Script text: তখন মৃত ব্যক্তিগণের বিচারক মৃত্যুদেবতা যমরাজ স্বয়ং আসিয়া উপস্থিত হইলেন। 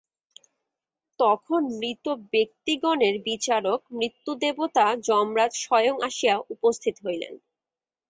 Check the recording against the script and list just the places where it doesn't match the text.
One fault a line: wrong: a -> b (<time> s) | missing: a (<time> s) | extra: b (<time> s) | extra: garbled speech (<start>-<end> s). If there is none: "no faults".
no faults